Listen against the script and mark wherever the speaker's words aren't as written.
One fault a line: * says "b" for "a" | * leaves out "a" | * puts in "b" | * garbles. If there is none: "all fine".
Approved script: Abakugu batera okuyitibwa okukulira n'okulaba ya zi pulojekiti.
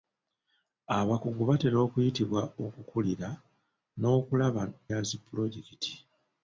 all fine